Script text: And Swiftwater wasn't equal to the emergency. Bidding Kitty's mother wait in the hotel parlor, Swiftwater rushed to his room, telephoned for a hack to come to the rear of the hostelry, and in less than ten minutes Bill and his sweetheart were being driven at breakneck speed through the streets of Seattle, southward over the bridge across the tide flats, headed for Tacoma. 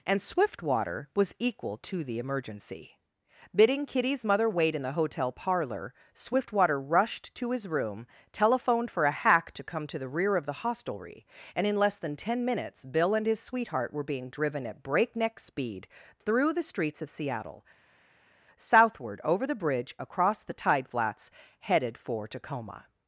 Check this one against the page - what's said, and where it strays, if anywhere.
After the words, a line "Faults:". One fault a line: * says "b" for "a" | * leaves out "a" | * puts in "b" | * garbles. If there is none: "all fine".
And Swiftwater was equal to the emergency. Bidding Kitty's mother wait in the hotel parlor, Swiftwater rushed to his room, telephoned for a hack to come to the rear of the hostelry, and in less than ten minutes Bill and his sweetheart were being driven at breakneck speed through the streets of Seattle, southward over the bridge across the tide flats, headed for Tacoma.
Faults:
* says "was" for "wasn't"